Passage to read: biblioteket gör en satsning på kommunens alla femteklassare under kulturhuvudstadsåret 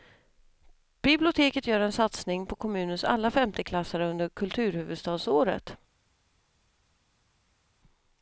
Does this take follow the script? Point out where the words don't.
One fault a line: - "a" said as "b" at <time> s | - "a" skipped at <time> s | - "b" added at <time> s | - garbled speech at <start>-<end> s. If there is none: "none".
none